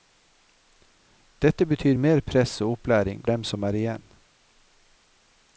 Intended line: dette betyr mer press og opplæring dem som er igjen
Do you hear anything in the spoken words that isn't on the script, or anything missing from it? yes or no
no